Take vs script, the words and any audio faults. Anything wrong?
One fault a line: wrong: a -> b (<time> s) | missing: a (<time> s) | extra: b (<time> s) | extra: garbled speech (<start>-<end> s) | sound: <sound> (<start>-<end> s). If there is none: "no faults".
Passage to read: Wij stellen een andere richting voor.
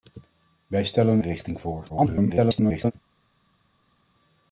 missing: een andere (1.2 s)
extra: garbled speech (1.9-2.9 s)